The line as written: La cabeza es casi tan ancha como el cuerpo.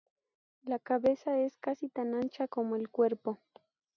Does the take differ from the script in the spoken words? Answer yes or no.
no